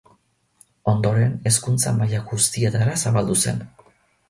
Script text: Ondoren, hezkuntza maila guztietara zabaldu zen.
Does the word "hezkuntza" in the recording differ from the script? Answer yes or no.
no